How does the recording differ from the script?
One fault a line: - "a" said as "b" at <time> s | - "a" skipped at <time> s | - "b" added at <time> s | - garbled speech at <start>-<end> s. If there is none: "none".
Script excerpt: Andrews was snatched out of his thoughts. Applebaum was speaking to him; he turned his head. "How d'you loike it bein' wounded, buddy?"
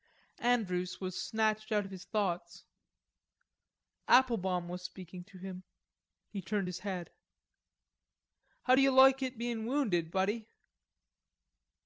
none